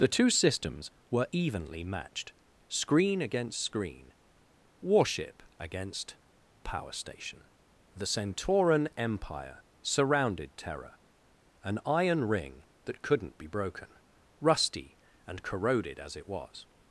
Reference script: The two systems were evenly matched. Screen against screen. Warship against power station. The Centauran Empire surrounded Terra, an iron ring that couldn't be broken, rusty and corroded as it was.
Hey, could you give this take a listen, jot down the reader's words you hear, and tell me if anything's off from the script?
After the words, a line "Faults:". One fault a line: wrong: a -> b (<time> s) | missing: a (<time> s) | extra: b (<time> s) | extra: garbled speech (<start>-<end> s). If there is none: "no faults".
The two systems were evenly matched. Screen against screen. Warship against power station. The Centauran Empire surrounded Terra, an iron ring that couldn't be broken, rusty and corroded as it was.
Faults:
no faults